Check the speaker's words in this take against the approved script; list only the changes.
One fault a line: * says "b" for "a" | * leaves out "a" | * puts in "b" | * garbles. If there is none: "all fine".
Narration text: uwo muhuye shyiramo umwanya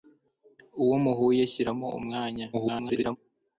* garbles